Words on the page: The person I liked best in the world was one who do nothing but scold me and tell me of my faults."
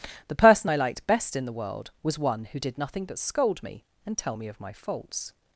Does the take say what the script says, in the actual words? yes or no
no